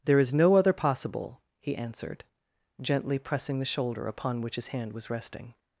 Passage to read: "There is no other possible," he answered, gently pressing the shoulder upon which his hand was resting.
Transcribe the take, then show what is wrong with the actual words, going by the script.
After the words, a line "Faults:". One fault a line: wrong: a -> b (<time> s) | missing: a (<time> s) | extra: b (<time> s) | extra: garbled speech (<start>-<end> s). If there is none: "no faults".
"There is no other possible," he answered, gently pressing the shoulder upon which his hand was resting.
Faults:
no faults